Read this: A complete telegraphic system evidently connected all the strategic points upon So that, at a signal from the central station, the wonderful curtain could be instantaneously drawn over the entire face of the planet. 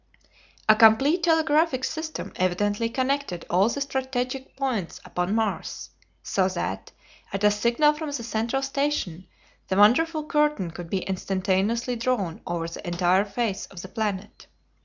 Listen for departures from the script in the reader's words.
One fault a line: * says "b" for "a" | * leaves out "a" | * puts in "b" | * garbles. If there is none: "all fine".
* puts in "Mars"